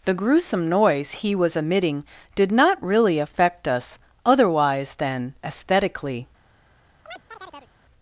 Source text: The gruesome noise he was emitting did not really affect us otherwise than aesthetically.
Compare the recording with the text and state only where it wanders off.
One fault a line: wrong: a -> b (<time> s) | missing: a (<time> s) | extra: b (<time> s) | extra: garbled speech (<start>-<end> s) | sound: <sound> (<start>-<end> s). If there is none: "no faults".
sound: chirp (7.1-7.7 s)